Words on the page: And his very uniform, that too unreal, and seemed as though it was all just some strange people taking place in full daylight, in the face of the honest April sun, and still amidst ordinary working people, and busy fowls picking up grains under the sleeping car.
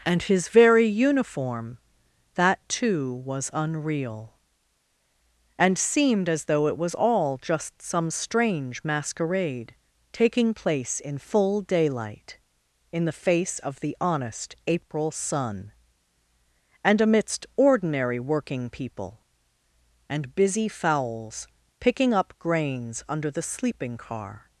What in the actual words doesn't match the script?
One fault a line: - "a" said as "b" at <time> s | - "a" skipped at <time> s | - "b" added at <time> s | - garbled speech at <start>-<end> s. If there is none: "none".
- "was" added at 3.2 s
- "people" said as "masquerade" at 8.8 s
- "still" skipped at 17.0 s